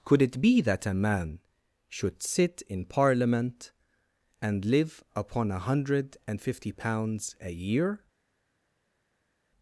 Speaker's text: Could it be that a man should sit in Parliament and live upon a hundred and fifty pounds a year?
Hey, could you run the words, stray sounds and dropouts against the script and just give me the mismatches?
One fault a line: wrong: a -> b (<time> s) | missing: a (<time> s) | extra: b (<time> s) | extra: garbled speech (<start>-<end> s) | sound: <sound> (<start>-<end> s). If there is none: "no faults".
no faults